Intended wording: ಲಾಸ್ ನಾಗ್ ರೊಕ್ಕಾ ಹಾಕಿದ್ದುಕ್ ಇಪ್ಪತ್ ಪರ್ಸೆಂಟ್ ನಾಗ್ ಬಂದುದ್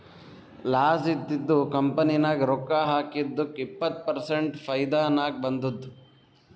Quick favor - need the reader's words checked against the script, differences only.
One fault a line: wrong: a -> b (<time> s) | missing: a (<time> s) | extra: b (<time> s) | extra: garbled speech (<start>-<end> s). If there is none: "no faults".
extra: ಇದ್ದಿದು ಕಂಪನಿ (1.1 s)
extra: ಫೈದಾ (4.6 s)